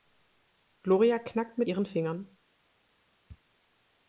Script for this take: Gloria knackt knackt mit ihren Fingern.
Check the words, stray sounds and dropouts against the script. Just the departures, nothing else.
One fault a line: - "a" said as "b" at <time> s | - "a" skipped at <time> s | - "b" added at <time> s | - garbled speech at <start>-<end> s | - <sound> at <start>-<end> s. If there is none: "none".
- "knackt" skipped at 1.6 s